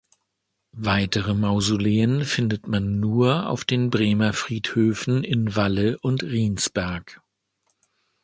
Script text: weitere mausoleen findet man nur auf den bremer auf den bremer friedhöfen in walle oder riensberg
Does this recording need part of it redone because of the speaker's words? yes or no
yes